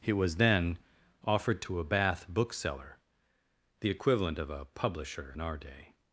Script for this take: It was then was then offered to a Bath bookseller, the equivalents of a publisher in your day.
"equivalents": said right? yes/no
no